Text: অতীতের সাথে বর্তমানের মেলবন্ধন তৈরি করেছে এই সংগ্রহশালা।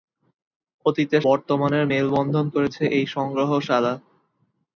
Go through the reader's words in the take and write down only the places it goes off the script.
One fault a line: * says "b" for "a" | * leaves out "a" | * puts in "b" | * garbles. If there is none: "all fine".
* leaves out "সাথে"
* leaves out "তৈরি"